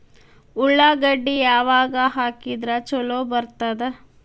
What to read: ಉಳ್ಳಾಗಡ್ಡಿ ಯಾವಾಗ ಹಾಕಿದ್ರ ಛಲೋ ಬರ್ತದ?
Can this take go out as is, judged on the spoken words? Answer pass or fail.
pass